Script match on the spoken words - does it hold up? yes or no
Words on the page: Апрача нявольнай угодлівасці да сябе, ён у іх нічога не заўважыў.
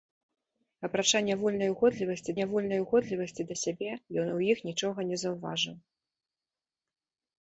no